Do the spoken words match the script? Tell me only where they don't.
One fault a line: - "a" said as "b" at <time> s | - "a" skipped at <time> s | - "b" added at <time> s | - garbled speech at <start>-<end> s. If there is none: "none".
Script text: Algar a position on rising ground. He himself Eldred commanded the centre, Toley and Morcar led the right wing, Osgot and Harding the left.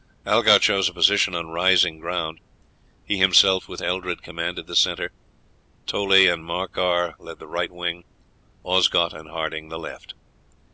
- "chose" added at 0.6 s
- "with" added at 3.7 s